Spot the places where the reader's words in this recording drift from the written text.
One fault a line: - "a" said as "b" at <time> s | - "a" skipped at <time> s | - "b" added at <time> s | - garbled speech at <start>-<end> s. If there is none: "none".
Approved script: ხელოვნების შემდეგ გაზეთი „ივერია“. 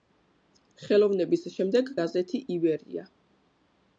none